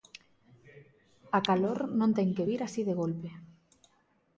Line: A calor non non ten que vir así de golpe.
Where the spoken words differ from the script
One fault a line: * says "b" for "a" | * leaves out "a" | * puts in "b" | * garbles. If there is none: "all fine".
* leaves out "non"